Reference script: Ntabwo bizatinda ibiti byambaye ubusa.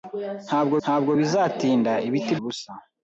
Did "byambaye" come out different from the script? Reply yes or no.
yes